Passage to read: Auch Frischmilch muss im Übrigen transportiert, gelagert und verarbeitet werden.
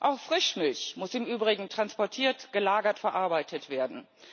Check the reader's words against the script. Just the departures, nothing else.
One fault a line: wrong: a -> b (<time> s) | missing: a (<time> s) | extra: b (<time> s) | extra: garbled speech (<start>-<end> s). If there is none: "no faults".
missing: und (3.0 s)